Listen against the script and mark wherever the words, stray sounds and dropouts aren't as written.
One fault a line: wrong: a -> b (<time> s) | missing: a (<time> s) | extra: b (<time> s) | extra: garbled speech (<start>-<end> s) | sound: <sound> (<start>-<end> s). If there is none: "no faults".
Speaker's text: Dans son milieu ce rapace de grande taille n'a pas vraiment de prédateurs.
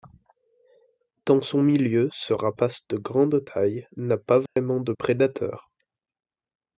sound: dropout (4.5-4.6 s)